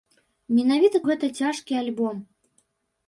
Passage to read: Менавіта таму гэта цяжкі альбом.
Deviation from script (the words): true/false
true